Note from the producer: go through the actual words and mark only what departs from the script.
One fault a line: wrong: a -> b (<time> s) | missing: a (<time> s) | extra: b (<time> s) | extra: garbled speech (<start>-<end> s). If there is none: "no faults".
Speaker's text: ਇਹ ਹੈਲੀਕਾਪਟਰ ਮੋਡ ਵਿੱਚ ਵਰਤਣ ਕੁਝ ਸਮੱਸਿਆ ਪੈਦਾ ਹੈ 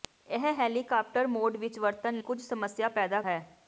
no faults